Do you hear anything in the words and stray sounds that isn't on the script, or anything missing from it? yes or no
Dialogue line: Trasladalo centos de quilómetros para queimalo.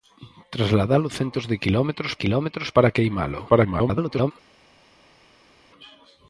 yes